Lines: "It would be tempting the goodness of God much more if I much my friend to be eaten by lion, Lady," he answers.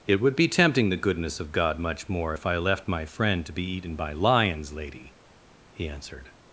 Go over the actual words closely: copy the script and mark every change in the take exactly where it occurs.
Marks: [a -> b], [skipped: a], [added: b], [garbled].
"It would be tempting the goodness of God much more if I [much -> left] my friend to be eaten by [lion, -> lions] Lady," he [answers. -> answered]